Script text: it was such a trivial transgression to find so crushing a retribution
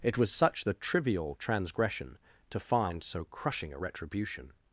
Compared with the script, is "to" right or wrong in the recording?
right